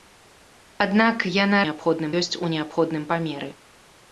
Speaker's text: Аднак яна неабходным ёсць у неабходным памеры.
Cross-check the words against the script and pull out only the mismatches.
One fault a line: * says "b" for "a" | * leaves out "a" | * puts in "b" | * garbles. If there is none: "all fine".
all fine